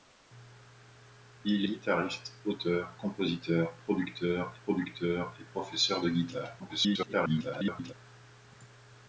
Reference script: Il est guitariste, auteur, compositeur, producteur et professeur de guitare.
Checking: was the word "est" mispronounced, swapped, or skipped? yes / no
yes